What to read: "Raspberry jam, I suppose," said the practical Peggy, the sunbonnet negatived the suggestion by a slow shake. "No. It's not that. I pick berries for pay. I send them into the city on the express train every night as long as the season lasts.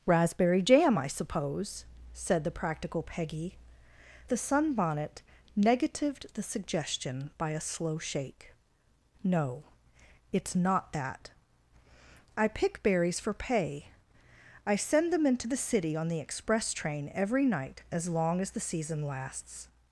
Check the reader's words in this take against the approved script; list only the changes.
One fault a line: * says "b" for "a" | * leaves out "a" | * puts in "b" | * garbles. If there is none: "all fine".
all fine